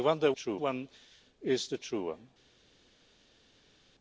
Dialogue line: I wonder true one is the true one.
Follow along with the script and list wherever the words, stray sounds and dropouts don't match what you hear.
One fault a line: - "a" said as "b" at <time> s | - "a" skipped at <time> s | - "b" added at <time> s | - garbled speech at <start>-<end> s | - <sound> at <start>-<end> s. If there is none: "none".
none